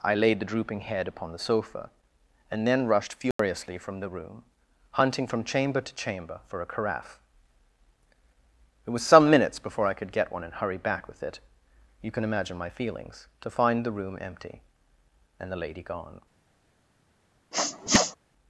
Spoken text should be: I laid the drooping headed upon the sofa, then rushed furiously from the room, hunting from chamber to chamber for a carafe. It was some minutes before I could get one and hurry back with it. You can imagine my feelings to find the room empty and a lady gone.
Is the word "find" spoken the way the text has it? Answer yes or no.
yes